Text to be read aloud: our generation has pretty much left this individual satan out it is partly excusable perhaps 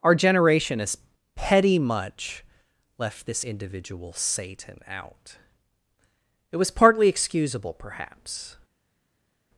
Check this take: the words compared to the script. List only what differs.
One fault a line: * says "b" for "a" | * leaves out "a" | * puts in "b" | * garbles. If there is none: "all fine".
* says "petty" for "pretty"
* says "was" for "is"